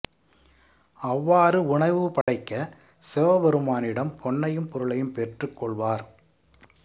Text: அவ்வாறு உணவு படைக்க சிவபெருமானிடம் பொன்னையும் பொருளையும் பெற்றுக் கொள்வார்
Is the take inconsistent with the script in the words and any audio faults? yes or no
yes